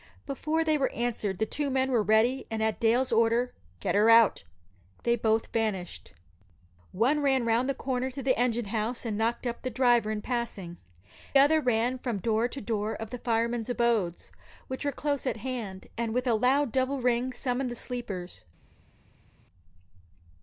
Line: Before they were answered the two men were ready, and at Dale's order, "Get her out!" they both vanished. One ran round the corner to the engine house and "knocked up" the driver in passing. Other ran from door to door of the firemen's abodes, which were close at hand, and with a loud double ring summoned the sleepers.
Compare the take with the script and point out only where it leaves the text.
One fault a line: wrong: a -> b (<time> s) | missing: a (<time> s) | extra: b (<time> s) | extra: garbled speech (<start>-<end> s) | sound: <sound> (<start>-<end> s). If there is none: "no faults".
no faults